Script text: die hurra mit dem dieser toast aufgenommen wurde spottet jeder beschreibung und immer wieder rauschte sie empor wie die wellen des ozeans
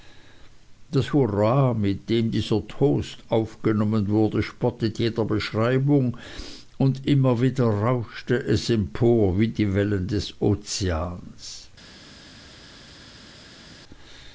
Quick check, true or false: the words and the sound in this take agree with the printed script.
false